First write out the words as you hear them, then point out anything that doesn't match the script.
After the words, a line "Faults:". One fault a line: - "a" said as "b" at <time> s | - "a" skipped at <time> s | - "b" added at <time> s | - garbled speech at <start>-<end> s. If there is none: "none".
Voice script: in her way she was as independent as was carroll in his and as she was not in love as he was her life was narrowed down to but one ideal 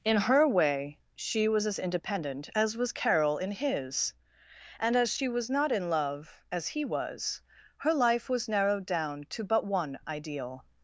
in her way she was as independent as was carroll in his and as she was not in love as he was her life was narrowed down to but one ideal
Faults:
none